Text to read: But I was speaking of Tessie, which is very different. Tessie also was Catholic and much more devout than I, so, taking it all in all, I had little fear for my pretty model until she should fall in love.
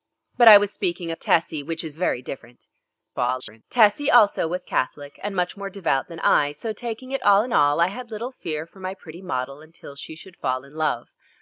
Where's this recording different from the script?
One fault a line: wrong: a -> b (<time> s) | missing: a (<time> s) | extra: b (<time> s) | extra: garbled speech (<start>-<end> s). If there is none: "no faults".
extra: garbled speech (3.1-3.6 s)